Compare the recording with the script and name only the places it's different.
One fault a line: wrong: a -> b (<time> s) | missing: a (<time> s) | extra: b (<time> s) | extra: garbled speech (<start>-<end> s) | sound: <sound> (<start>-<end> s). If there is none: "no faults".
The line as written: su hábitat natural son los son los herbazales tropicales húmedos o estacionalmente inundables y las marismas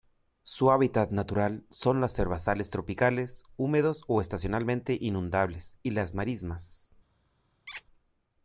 missing: son los (2.2 s)
sound: squeak (7.7-7.8 s)